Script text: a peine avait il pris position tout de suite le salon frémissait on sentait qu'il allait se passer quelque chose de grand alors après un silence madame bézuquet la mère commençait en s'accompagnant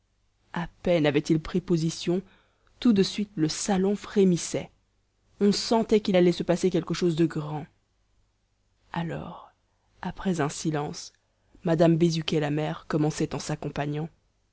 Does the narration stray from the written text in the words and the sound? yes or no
no